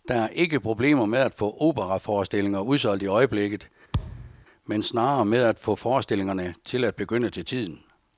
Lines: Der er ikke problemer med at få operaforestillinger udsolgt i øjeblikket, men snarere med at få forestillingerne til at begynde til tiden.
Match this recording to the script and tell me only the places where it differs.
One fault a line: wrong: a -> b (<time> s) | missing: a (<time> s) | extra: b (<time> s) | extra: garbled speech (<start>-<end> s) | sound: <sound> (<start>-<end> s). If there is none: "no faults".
sound: thud (3.9-4.4 s)